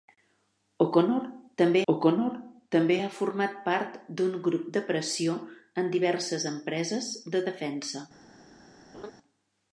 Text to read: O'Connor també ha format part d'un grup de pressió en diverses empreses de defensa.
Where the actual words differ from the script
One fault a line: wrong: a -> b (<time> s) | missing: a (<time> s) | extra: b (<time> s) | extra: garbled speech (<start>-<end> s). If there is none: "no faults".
extra: o'connor també (1.9 s)